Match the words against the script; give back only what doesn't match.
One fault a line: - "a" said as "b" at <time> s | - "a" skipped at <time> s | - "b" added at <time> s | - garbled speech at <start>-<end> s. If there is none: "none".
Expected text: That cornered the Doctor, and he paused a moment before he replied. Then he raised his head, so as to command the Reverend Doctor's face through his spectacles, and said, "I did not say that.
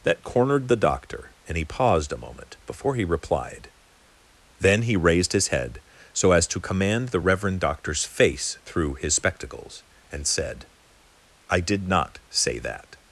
none